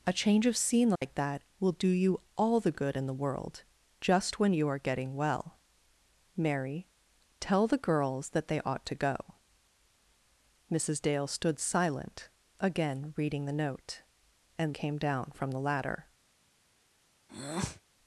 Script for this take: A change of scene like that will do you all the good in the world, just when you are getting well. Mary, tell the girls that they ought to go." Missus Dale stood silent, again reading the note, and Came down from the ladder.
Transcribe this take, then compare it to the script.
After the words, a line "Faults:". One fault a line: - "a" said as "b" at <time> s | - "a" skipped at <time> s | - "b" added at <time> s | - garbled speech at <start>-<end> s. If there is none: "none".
A change of scene like that will do you all the good in the world, just when you are getting well. Mary, tell the girls that they ought to go." Missus Dale stood silent, again reading the note, and Came down from the ladder.
Faults:
none